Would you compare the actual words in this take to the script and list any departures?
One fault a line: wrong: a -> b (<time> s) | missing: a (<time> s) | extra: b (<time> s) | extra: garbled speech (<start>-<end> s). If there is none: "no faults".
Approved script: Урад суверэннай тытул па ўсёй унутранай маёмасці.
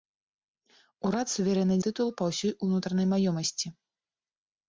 no faults